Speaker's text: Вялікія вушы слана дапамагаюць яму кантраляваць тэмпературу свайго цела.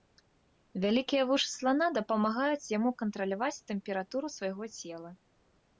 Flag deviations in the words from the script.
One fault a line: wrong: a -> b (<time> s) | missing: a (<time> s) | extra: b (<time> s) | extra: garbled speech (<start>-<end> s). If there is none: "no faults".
no faults